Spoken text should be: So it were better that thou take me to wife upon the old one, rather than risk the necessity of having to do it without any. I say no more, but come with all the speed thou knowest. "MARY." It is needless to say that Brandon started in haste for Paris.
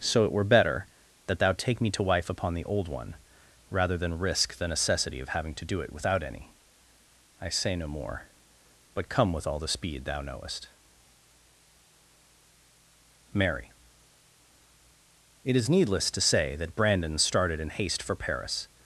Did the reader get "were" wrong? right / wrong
right